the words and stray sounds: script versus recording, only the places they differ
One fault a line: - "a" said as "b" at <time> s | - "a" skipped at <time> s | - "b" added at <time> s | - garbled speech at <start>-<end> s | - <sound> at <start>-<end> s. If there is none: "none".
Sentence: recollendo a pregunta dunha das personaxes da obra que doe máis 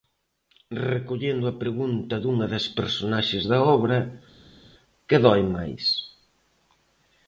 none